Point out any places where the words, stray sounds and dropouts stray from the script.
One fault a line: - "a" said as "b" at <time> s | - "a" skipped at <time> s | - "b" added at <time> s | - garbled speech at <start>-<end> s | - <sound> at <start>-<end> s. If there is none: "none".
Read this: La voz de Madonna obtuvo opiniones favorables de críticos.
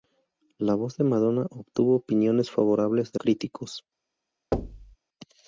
- thud at 4.5-5.0 s